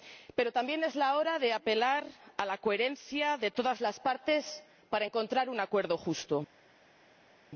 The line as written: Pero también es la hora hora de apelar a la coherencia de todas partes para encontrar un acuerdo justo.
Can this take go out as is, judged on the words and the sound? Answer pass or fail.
fail